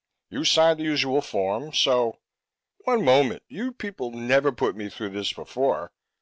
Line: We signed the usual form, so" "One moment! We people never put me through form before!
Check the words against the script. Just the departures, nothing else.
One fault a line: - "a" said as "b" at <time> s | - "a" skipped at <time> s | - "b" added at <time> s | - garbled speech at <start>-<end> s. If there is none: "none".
- "We" said as "You" at 0.3 s
- "We" said as "You" at 3.5 s
- "form" said as "this" at 5.1 s